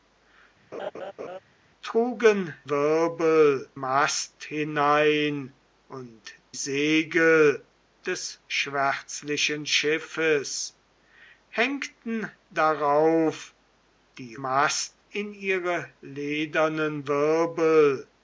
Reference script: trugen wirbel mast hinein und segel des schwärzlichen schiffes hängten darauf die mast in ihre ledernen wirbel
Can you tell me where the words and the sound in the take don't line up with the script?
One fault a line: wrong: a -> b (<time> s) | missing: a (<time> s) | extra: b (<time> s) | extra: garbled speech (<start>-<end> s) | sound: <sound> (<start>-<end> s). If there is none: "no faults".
sound: laugh (0.7-1.4 s)